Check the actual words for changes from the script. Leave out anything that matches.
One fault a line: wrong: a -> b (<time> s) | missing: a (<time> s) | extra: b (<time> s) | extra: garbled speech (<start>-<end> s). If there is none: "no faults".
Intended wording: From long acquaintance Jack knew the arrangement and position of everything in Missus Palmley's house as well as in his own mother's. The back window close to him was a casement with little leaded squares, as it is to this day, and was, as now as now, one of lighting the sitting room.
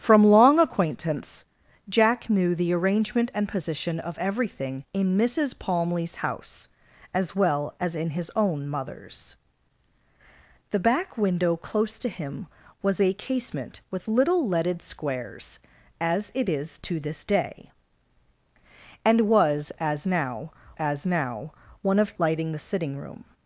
no faults